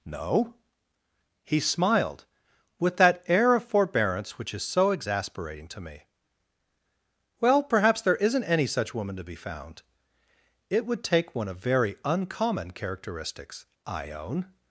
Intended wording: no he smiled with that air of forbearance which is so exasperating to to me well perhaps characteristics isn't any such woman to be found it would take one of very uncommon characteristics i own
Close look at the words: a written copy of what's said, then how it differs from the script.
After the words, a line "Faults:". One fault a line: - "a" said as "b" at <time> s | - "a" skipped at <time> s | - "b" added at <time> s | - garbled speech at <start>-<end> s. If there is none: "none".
no he smiled with that air of forbearance which is so exasperating to me well perhaps there isn't any such woman to be found it would take one of very uncommon characteristics i own
Faults:
- "to" skipped at 5.8 s
- "characteristics" said as "there" at 8.0 s